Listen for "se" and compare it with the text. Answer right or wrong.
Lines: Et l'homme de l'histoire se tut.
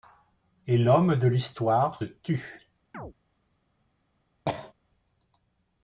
wrong